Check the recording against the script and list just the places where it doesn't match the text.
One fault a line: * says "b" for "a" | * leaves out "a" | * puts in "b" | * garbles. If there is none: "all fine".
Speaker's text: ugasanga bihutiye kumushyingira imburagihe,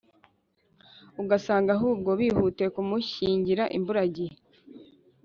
* puts in "ahubwo"